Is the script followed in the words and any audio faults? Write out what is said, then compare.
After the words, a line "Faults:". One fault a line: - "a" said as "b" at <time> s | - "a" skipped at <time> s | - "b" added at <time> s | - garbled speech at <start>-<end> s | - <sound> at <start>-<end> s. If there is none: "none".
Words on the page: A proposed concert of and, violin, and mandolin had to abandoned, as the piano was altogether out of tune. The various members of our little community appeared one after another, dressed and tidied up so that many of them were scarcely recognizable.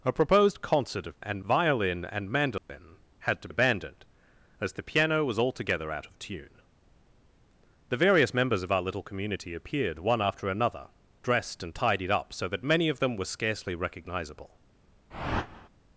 A proposed concert of and, violin, and mandolin had to abandoned, as the piano was altogether out of tune. The various members of our little community appeared one after another, dressed and tidied up so that many of them were scarcely recognizable.
Faults:
- dropout at 2.6-2.7 s
- whoosh at 15.1-15.7 s